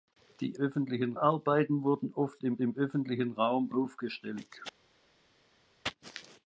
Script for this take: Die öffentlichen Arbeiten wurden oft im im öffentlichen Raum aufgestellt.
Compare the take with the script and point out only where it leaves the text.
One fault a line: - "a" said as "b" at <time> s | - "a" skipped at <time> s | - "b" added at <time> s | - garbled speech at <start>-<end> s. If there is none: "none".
none